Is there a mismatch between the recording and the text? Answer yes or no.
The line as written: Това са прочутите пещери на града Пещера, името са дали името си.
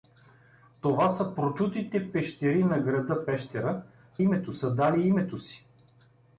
no